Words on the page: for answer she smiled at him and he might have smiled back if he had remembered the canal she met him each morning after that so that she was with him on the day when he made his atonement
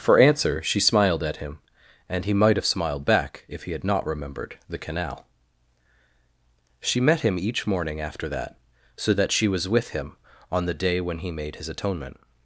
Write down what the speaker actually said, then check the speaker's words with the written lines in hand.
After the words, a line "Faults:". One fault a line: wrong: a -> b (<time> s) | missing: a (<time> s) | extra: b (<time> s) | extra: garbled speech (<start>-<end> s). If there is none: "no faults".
for answer she smiled at him and he might have smiled back if he had not remembered the canal she met him each morning after that so that she was with him on the day when he made his atonement
Faults:
extra: not (3.8 s)